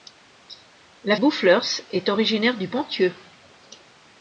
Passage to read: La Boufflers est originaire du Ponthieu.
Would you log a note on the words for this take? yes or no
no